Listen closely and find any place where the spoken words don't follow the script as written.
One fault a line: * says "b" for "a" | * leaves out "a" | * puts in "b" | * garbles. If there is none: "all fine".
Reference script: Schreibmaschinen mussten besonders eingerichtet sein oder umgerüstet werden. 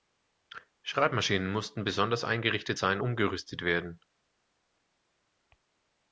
* leaves out "oder"